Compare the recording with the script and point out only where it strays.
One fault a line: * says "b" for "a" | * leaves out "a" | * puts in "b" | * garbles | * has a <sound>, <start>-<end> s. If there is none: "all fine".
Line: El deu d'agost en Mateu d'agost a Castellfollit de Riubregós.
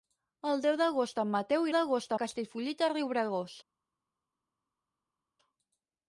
all fine